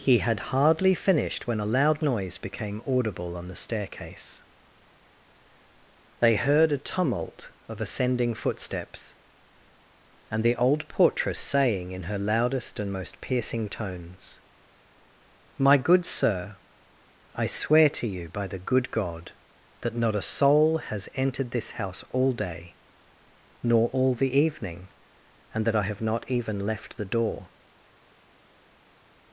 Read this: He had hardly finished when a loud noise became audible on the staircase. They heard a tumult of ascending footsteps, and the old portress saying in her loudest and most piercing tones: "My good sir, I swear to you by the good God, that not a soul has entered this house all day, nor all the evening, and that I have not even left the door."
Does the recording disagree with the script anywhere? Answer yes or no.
no